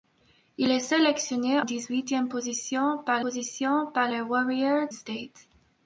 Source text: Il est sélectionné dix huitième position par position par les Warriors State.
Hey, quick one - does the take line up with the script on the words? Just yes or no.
yes